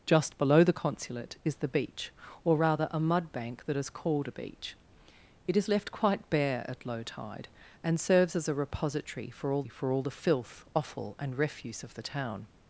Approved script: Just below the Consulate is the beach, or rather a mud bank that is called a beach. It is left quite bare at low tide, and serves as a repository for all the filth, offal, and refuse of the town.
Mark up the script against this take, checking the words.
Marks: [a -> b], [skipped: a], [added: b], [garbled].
Just below the Consulate is the beach, or rather a mud bank that is called a beach. It is left quite bare at low tide, and serves as a repository for all [added: for all] the filth, offal, and refuse of the town.